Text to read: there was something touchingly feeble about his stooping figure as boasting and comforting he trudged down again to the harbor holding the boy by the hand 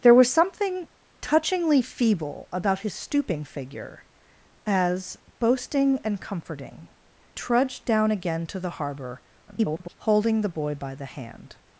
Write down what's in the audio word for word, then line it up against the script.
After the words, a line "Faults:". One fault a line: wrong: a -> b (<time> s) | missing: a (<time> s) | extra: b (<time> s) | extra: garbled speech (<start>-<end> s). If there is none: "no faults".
there was something touchingly feeble about his stooping figure as boasting and comforting trudged down again to the harbor [garbled] holding the boy by the hand
Faults:
missing: he (6.9 s)
extra: garbled speech (9.5-9.9 s)